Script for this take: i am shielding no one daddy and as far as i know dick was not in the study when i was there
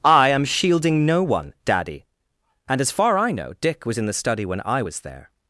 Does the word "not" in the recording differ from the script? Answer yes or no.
yes